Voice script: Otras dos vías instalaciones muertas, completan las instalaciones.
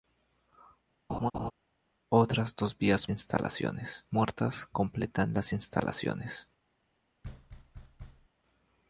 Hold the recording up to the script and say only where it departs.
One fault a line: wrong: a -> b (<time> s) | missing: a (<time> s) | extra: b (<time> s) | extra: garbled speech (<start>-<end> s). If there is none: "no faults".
no faults